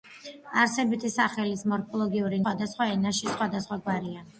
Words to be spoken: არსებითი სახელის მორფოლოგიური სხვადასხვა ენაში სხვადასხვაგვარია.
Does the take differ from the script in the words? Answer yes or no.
no